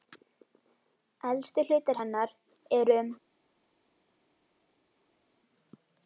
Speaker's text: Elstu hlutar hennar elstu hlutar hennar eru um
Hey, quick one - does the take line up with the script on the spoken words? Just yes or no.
no